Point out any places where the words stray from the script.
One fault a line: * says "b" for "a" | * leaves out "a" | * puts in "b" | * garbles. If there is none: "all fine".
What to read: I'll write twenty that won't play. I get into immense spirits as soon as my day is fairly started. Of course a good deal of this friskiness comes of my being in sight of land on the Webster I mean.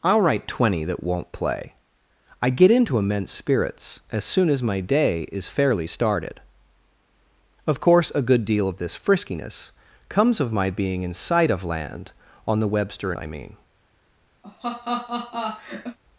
all fine